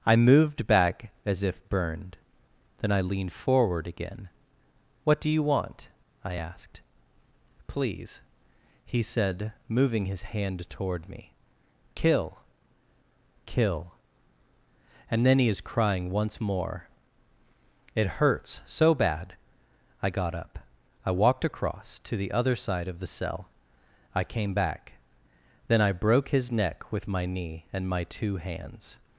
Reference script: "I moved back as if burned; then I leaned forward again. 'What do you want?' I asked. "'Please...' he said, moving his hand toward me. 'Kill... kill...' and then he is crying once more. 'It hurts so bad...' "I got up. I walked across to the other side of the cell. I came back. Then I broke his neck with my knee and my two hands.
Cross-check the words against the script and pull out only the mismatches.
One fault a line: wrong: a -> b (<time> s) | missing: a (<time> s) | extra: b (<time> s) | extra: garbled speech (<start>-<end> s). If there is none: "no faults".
no faults